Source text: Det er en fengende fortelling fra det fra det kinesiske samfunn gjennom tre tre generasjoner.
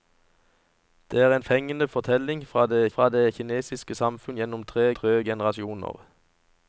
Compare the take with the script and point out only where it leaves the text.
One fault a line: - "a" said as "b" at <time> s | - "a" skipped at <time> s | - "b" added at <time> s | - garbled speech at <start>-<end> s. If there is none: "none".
none